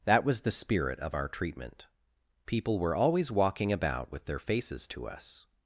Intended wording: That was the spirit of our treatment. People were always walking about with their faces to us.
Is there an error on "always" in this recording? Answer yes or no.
no